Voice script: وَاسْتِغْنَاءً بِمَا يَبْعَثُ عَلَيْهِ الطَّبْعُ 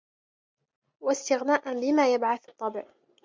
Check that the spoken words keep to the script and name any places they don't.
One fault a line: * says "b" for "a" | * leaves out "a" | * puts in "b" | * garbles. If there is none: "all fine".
* leaves out "عَلَيْهِ"